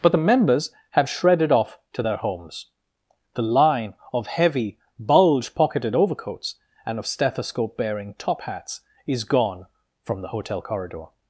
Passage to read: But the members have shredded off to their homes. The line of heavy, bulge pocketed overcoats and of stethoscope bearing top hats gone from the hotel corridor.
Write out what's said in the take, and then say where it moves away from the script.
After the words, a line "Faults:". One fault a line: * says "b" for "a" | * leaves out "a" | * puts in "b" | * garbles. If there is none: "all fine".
But the members have shredded off to their homes. The line of heavy, bulge pocketed overcoats and of stethoscope bearing top hats is gone from the hotel corridor.
Faults:
* puts in "is"